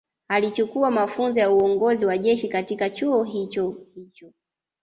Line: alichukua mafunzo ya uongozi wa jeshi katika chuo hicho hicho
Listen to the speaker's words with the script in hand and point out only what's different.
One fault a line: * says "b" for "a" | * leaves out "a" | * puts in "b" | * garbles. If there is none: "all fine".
all fine